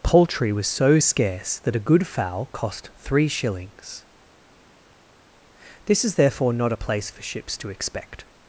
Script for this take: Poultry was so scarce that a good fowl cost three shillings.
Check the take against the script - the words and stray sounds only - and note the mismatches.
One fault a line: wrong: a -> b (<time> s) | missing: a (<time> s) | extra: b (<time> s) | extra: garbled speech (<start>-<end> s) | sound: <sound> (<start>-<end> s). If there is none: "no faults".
extra: This is therefore not a place for ships to expect (5.9 s)